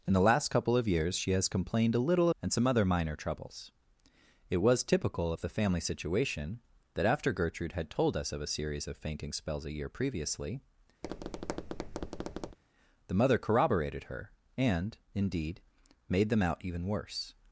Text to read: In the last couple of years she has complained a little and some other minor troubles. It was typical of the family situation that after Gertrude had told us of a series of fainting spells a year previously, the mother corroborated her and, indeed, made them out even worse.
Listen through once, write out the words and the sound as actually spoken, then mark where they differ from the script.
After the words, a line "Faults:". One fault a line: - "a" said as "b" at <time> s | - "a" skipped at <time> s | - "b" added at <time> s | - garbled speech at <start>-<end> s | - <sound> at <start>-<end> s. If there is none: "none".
In the last couple of years she has complained a little and some other minor troubles. It was typical of the family situation that after Gertrude had told us of a series of fainting spells a year previously, the mother corroborated her and, indeed, made them out even worse.
Faults:
- tap at 11.0-12.6 s